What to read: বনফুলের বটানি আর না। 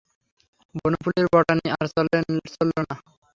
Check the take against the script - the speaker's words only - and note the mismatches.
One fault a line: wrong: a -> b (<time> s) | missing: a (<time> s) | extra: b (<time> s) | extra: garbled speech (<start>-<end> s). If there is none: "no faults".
extra: চলল (2.5 s)